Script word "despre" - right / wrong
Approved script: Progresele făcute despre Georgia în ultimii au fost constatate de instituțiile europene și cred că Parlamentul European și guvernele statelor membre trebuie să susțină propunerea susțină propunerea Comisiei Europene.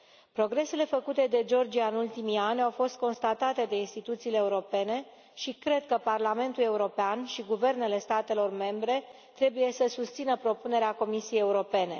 wrong